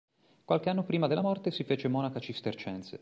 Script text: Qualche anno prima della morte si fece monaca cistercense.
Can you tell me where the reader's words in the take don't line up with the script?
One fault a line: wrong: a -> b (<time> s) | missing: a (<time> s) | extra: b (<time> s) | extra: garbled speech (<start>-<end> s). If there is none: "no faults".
no faults